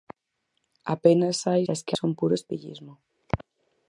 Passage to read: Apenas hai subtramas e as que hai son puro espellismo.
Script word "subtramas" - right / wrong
wrong